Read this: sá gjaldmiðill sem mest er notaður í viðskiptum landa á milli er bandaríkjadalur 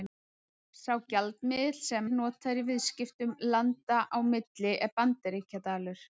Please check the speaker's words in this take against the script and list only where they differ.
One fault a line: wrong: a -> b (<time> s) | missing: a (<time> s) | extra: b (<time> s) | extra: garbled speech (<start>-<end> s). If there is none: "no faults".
missing: mest (2.1 s)